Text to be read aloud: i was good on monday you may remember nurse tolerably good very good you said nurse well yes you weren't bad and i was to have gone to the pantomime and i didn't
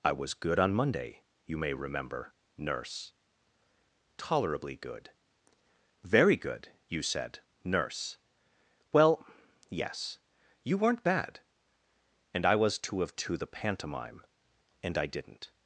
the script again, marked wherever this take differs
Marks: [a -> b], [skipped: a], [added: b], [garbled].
i was good on monday you may remember nurse tolerably good very good you said nurse well yes you weren't bad and i was to have [skipped: gone] to the pantomime and i didn't